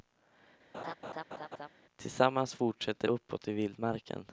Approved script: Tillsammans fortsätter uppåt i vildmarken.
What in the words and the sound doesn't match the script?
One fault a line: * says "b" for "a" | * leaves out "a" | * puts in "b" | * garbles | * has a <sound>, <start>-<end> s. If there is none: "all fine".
* has a laugh, 0.7-1.7 s